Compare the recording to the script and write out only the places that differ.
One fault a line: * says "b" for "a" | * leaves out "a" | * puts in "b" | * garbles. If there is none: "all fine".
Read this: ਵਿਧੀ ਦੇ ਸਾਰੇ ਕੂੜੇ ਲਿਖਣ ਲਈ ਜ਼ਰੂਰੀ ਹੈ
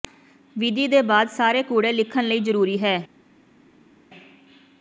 * puts in "ਬਾਅਦ"